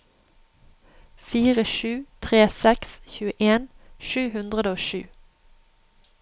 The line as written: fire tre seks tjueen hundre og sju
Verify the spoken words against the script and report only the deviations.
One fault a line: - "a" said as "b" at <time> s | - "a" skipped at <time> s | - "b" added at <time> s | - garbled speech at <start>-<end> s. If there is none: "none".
- "sju" added at 1.7 s
- "sju" added at 4.1 s